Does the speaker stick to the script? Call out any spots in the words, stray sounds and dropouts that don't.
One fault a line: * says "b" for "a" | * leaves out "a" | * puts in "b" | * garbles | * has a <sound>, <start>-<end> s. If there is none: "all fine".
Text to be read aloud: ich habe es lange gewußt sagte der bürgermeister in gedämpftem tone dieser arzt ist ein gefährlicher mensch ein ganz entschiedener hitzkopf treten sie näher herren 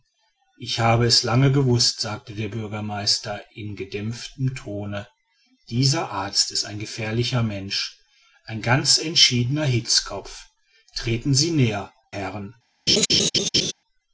* has a laugh, 12.9-13.7 s